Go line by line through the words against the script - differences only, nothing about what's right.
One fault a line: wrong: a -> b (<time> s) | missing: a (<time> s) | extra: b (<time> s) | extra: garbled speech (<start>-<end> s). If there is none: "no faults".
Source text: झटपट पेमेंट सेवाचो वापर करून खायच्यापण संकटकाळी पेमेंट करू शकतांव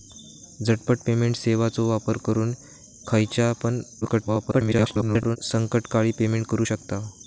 extra: garbled speech (4.0-5.4 s)